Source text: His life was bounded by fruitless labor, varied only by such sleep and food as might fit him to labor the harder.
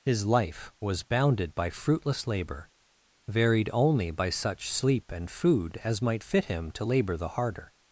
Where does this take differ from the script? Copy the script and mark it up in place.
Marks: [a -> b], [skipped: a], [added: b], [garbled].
His life was bounded by fruitless labor, varied only by such sleep and food as might fit him to labor the harder.